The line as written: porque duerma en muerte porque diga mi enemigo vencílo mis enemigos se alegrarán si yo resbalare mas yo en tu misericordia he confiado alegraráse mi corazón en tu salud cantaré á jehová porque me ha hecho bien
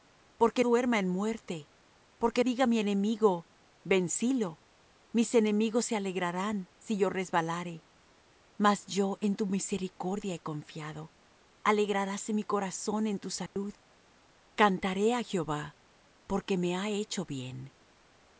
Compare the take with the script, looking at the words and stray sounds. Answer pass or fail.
fail